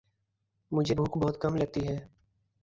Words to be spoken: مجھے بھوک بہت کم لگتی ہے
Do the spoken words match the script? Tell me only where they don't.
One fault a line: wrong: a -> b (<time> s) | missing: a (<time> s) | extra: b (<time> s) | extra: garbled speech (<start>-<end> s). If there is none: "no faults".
no faults